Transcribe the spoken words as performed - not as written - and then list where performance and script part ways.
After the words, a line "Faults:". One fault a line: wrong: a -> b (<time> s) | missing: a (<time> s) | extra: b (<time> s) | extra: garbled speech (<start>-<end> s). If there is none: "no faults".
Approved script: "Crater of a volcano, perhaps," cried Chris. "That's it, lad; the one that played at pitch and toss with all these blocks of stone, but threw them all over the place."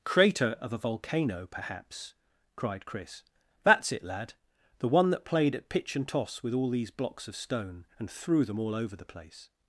"Crater of a volcano, perhaps," cried Chris. "That's it, lad; the one that played at pitch and toss with all these blocks of stone, and threw them all over the place."
Faults:
wrong: but -> and (8.0 s)